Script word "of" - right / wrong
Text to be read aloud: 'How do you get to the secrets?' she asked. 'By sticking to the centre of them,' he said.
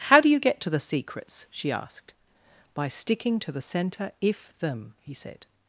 wrong